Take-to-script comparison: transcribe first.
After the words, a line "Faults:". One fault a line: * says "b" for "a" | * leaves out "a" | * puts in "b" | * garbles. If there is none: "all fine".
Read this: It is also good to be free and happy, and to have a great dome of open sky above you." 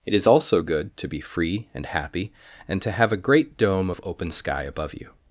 It is also good to be free and happy, and to have a great dome of open sky above you."
Faults:
all fine